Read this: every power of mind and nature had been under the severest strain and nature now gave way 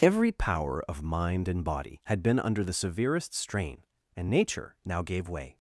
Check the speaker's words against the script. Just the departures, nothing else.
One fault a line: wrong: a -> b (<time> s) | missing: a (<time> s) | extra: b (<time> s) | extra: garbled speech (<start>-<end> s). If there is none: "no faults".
wrong: nature -> body (1.6 s)